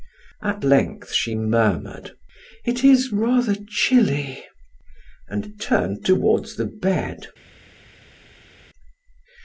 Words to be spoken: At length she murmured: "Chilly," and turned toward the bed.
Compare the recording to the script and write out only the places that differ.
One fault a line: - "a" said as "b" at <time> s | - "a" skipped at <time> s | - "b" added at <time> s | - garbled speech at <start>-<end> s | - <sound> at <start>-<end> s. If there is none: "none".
- "It is rather" added at 2.7 s